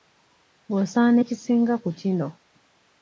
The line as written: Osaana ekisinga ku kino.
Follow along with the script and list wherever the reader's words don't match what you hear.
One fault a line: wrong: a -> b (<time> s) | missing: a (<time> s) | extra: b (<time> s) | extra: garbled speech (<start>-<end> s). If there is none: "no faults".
no faults